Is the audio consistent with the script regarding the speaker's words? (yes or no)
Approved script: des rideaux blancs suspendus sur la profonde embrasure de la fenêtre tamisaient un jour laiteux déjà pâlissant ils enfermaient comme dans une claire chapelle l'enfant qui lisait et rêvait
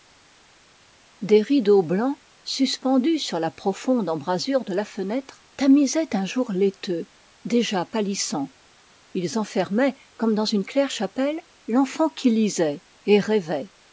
yes